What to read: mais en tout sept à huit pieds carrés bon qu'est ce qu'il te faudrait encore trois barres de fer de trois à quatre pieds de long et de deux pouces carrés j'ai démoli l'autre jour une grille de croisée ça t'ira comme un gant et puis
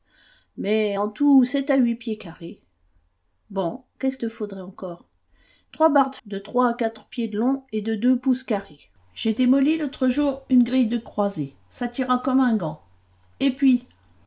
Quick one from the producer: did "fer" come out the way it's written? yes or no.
no